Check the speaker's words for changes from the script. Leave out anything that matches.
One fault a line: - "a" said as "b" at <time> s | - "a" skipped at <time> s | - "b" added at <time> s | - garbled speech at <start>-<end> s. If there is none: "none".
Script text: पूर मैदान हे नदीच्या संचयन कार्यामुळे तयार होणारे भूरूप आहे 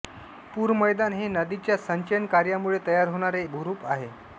none